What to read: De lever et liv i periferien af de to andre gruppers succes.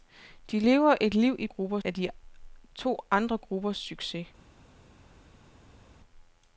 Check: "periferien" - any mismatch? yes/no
yes